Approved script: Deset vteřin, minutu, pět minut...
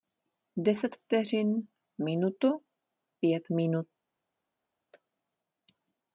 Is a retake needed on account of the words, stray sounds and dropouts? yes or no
no